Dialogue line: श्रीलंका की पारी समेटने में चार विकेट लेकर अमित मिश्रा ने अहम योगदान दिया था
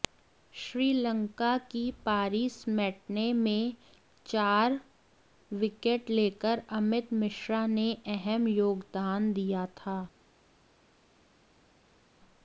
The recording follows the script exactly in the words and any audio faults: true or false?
true